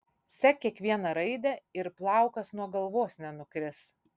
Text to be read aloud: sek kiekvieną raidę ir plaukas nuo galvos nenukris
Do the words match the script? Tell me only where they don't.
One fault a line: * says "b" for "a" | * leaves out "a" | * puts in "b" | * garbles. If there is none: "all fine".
all fine